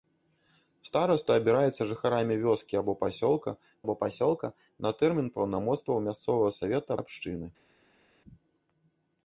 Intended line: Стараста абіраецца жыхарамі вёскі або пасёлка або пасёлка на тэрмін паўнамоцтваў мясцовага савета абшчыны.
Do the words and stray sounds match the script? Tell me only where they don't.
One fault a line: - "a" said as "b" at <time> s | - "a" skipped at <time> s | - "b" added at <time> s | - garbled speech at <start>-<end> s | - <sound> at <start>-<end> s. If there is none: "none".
none